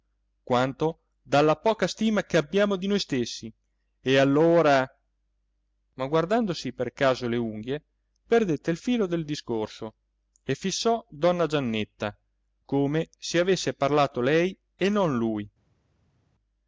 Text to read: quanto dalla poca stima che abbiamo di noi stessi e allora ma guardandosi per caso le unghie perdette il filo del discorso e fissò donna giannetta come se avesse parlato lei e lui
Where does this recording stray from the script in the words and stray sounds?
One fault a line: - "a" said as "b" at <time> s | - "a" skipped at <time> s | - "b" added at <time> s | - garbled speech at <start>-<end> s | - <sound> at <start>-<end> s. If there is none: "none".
- "non" added at 14.9 s